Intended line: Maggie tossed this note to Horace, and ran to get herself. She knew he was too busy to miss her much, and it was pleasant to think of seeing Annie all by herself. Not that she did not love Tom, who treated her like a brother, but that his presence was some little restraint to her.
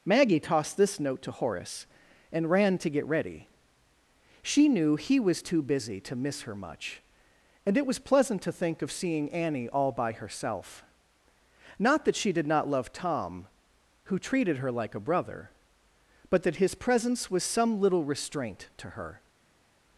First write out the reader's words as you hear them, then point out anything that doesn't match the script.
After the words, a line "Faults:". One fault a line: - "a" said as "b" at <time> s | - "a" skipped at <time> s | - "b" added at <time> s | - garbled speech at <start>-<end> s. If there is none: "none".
Maggie tossed this note to Horace, and ran to get ready. She knew he was too busy to miss her much, and it was pleasant to think of seeing Annie all by herself. Not that she did not love Tom, who treated her like a brother, but that his presence was some little restraint to her.
Faults:
- "herself" said as "ready" at 3.0 s